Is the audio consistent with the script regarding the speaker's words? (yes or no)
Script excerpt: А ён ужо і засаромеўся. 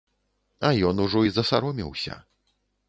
yes